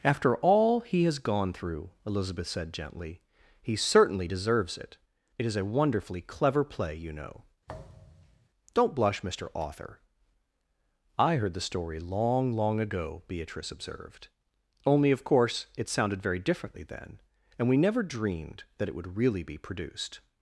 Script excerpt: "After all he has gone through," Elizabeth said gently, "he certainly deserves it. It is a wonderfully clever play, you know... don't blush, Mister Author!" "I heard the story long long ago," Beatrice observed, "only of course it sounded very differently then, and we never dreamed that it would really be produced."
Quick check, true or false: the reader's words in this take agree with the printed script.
true